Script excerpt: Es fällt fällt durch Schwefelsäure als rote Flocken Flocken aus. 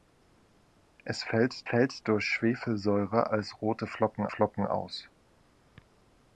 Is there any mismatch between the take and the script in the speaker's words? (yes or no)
no